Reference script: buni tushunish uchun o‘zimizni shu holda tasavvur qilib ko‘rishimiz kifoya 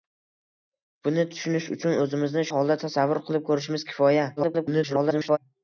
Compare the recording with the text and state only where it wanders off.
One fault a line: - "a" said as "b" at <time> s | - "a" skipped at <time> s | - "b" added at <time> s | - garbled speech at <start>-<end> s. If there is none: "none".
- "shu" skipped at 2.5 s
- garbled speech at 4.4-5.4 s